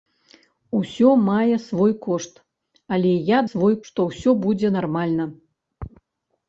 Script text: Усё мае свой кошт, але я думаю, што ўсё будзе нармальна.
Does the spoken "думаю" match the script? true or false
false